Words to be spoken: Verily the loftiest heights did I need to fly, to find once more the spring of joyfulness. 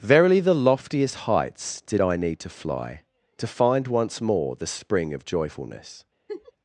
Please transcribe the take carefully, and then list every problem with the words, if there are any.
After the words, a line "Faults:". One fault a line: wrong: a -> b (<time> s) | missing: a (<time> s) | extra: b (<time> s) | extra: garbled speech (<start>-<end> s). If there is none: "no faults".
Verily the loftiest heights did I need to fly, to find once more the spring of joyfulness.
Faults:
no faults